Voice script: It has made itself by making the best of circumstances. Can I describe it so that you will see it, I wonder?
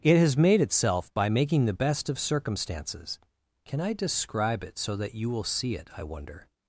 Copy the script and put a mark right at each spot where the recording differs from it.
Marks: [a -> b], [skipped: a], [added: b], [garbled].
It has made itself by making the best of circumstances. Can I describe it so that you will see it, I wonder?